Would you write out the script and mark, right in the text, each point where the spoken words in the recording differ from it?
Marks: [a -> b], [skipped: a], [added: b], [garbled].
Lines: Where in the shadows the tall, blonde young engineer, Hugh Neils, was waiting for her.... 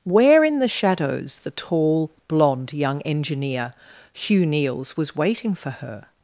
Where in the shadows the tall, blonde young engineer, Hugh Neils, was waiting for her....